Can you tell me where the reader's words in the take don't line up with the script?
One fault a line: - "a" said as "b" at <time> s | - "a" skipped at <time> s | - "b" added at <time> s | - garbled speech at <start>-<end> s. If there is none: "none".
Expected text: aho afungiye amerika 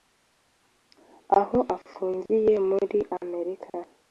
- "muri" added at 2.7 s